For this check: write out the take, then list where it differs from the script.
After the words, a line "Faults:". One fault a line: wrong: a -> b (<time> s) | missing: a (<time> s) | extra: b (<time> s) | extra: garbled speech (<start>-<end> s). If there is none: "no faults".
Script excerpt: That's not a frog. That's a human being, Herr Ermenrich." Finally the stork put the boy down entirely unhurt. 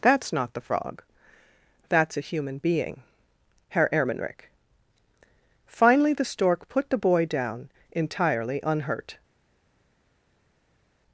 That's not the frog. That's a human being, Herr Ermenrich." Finally the stork put the boy down entirely unhurt.
Faults:
wrong: a -> the (0.5 s)